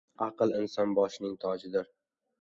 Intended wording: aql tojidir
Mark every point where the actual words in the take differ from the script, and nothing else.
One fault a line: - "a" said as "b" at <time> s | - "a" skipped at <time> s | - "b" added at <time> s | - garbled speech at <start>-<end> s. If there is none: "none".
- "inson boshining" added at 0.6 s